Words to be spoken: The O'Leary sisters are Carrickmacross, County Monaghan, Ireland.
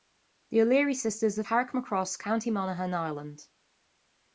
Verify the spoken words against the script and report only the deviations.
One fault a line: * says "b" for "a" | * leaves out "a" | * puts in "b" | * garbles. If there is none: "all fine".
all fine